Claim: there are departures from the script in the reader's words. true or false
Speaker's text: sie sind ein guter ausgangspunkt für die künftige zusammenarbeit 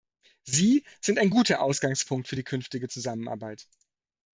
false